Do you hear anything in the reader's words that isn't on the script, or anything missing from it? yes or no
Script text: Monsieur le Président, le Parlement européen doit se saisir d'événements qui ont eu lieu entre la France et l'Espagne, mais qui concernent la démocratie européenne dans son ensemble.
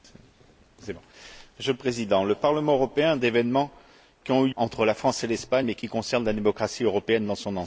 yes